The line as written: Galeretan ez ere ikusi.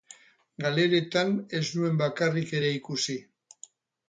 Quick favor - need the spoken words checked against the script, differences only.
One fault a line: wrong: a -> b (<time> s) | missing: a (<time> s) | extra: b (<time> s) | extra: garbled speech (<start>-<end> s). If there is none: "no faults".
extra: nuen bakarrik (1.8 s)